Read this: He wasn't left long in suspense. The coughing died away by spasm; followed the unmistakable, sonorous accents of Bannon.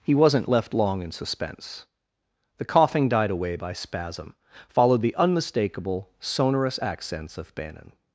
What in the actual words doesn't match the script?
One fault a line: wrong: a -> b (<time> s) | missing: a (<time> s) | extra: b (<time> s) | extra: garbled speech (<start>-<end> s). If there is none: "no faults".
no faults